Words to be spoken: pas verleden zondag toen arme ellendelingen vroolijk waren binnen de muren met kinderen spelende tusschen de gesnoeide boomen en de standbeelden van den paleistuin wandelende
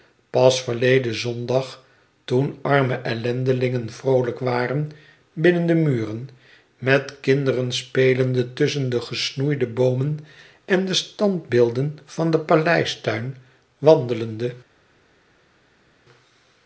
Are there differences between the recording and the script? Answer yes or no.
no